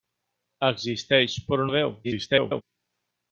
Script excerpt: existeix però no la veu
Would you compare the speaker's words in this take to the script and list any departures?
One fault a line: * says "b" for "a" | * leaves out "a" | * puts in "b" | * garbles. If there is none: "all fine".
* leaves out "no"
* garbles